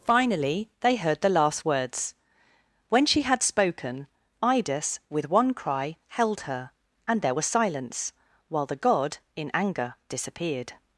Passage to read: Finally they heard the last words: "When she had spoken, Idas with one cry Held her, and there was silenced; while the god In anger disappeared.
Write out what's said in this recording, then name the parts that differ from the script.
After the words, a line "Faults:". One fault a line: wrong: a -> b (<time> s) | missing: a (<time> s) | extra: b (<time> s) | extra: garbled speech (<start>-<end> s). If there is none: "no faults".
Finally they heard the last words: "When she had spoken, Idas with one cry Held her, and there was silence; while the god In anger disappeared.
Faults:
wrong: silenced -> silence (7.4 s)